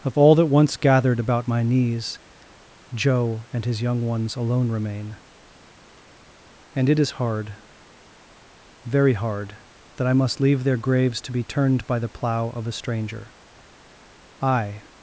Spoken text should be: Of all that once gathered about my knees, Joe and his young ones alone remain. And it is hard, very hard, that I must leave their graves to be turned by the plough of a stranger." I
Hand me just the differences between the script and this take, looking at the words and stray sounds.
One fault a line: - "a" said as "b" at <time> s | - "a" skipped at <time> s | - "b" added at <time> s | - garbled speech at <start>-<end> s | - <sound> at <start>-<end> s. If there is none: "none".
none